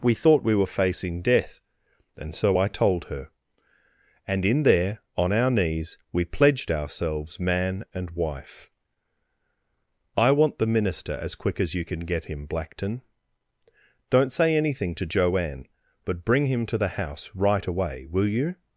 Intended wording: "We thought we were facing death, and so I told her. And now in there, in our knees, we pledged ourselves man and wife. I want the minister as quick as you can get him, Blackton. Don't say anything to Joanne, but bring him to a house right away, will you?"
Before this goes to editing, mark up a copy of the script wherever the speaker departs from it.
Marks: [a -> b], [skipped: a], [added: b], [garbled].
"We thought we were facing death, and so I told her. And [skipped: now] in there, [in -> on] our knees, we pledged ourselves man and wife. I want the minister as quick as you can get him, Blackton. Don't say anything to Joanne, but bring him to [a -> the] house right away, will you?"